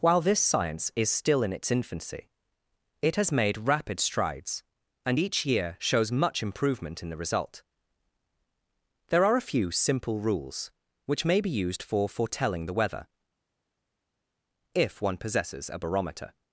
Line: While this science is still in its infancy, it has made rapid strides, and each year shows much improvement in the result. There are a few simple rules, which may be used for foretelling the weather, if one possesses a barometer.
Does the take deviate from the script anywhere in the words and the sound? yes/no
no